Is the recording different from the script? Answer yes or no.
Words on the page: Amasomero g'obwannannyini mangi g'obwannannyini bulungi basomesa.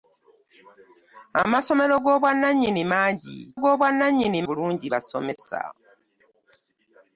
no